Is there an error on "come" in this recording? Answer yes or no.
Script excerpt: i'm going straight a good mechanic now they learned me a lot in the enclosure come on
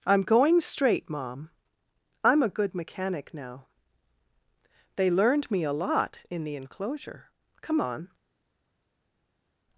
no